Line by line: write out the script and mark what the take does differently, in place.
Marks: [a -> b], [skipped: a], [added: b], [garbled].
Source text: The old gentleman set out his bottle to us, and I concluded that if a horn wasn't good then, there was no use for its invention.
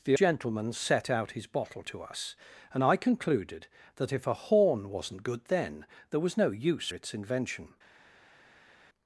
The [skipped: old] gentleman set out his bottle to us, and I concluded that if a horn wasn't good then, there was no use [skipped: for] its invention.